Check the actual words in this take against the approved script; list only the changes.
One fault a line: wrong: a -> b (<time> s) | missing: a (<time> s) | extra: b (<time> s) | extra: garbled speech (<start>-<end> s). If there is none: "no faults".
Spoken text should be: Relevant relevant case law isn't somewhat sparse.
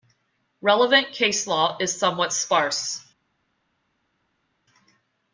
missing: relevant (1.1 s)
wrong: isn't -> is (1.8 s)